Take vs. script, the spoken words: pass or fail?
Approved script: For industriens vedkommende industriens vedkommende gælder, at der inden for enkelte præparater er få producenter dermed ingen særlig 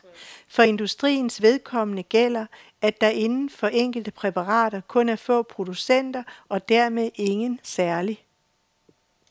fail